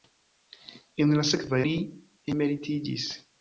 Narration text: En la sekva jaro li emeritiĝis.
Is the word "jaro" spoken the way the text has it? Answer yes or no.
no